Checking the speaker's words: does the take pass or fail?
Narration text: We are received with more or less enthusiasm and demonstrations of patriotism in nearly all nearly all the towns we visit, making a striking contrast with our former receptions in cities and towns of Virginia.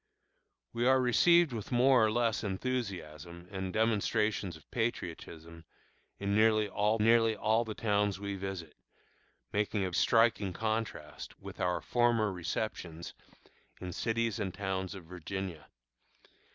pass